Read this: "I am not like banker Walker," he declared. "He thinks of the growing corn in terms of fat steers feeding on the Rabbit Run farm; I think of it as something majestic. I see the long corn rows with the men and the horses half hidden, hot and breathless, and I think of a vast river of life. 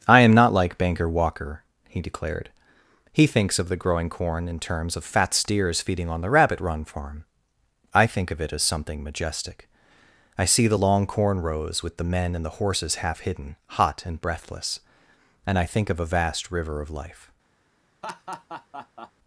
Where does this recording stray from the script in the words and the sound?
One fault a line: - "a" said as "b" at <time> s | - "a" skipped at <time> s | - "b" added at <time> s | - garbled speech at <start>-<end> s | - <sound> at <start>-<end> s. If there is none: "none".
- laugh at 18.0-19.1 s